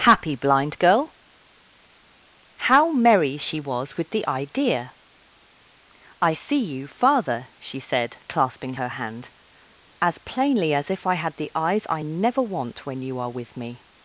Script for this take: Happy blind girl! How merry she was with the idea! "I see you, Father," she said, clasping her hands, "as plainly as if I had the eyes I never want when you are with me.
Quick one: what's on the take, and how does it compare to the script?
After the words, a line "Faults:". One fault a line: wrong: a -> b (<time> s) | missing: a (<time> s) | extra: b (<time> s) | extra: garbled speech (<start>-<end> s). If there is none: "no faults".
Happy blind girl! How merry she was with the idea! "I see you, Father," she said, clasping her hand, "as plainly as if I had the eyes I never want when you are with me.
Faults:
wrong: hands -> hand (8.9 s)